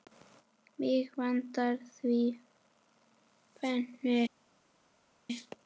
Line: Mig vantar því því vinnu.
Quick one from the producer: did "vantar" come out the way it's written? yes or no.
yes